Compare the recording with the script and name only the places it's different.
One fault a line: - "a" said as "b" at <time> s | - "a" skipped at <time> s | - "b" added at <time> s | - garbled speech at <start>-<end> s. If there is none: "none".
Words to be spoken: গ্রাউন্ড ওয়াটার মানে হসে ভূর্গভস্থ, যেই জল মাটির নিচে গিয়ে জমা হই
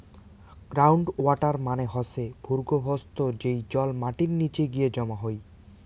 none